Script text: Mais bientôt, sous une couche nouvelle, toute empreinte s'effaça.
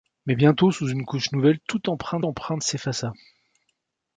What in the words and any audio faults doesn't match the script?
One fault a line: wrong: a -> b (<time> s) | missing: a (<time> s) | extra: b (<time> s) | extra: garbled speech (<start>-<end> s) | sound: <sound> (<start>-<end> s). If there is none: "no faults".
extra: empreinte (2.2 s)